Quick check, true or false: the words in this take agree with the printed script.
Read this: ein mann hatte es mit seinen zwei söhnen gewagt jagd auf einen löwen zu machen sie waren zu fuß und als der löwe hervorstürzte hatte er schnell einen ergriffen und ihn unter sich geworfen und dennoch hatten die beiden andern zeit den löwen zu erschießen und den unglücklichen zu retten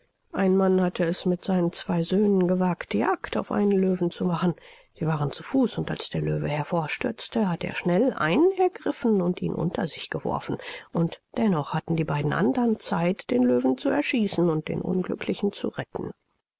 true